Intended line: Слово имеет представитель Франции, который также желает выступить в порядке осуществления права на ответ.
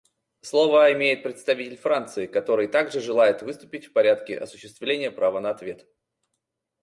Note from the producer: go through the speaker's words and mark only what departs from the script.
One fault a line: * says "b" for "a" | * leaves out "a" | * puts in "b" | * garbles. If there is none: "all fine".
all fine